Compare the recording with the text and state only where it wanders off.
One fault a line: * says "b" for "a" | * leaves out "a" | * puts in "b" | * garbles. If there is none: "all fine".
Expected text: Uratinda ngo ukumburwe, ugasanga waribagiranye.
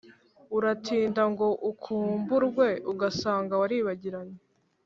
all fine